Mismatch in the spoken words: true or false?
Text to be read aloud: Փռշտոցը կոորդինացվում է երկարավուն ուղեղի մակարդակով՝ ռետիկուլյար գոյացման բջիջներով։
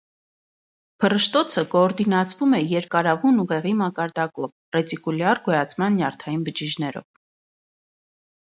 true